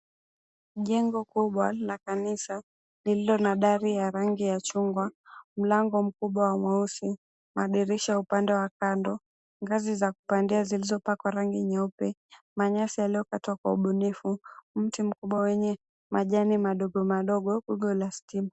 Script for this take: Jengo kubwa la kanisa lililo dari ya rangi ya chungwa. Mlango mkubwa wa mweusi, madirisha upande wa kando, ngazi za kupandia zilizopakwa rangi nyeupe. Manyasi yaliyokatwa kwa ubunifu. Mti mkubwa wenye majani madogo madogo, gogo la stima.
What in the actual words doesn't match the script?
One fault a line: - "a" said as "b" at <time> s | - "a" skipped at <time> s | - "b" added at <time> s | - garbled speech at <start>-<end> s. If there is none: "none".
- "na" added at 3.4 s